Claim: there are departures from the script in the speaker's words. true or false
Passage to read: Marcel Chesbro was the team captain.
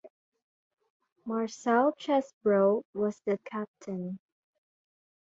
true